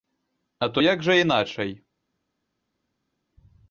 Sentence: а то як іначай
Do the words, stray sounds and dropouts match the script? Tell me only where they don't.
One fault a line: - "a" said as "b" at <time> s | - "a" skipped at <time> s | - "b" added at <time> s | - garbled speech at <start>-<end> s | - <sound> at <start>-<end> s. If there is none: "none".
- "жа" added at 1.0 s